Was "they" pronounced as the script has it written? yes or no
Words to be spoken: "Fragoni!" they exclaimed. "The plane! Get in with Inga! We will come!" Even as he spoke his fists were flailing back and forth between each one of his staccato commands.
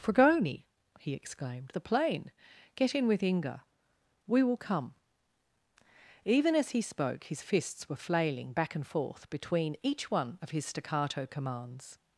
no